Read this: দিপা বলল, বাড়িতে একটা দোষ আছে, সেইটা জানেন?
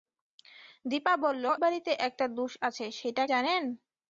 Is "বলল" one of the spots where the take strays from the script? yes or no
no